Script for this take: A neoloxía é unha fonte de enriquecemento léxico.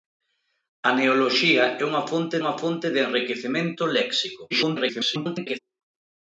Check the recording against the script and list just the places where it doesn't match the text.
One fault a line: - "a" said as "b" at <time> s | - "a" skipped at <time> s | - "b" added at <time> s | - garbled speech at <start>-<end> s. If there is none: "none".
- "unha fonte" added at 2.4 s
- garbled speech at 4.5-5.6 s